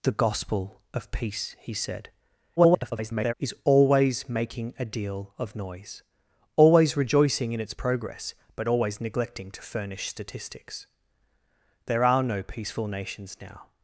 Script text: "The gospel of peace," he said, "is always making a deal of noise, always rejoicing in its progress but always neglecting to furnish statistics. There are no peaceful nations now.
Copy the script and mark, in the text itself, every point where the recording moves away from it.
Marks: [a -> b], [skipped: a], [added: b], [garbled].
"The gospel of peace," he said, [garbled] "is always making a deal of noise, always rejoicing in its progress but always neglecting to furnish statistics. There are no peaceful nations now.